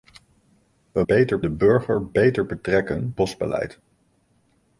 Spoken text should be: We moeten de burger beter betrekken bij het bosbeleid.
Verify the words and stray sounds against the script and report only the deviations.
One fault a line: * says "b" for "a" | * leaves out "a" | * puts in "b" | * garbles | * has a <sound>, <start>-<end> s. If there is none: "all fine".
* says "beter" for "moeten"
* leaves out "bij het"